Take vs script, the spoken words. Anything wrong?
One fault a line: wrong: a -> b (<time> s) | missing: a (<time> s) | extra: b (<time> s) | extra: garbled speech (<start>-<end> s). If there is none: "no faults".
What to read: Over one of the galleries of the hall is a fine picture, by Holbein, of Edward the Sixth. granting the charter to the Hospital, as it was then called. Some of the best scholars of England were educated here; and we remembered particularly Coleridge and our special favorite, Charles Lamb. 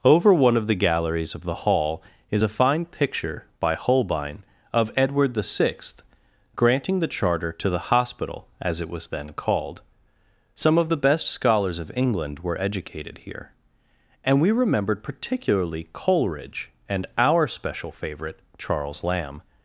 no faults